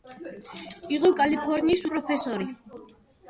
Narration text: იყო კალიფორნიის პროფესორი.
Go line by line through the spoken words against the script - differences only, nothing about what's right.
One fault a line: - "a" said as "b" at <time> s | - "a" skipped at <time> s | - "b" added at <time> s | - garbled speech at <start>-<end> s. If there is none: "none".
none